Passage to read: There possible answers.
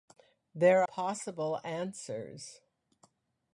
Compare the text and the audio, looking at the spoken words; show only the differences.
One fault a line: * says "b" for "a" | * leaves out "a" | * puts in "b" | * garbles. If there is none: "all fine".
all fine